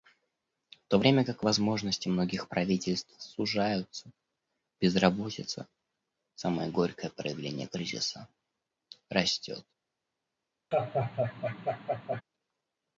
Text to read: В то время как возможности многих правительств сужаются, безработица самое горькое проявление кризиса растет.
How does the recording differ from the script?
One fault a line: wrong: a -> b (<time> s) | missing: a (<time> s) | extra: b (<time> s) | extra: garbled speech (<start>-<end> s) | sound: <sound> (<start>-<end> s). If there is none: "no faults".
sound: laugh (10.7-12.2 s)